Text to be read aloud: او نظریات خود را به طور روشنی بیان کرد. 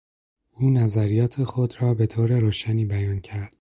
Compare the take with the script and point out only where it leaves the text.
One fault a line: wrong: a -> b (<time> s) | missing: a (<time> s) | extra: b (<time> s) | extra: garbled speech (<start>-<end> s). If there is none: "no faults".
no faults